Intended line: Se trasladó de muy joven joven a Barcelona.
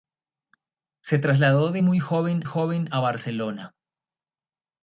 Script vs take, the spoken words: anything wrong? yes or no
no